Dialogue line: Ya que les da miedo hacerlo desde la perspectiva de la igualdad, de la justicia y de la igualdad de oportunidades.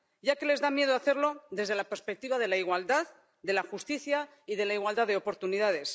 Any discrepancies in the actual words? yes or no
no